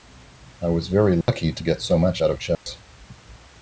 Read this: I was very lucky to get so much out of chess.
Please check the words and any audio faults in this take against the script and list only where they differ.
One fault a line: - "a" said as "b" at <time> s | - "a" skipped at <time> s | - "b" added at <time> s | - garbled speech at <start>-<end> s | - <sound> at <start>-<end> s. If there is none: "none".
- dropout at 1.2-1.3 s
- dropout at 2.5-2.7 s